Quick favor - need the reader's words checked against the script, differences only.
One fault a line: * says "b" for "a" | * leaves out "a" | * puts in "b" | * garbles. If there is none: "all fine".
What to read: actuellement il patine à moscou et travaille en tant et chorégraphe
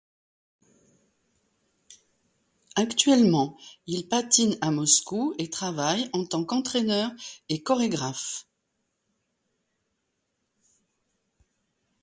* puts in "qu'entraîneur"